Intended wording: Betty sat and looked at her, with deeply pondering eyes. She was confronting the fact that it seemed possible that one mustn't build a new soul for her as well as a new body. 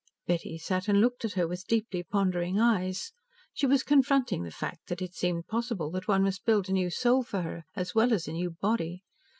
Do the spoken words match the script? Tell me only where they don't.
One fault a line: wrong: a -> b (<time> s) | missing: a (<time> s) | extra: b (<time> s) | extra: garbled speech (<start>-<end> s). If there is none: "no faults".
wrong: mustn't -> must (6.2 s)